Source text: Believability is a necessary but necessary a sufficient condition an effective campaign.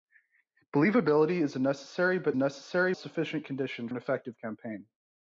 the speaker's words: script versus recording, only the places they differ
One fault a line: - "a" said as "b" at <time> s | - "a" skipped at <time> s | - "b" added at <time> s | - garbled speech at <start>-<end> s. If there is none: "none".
none